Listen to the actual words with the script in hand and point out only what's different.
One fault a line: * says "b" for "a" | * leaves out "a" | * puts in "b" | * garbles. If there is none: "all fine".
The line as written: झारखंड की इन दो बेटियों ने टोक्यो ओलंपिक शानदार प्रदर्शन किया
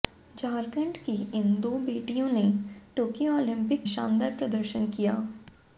all fine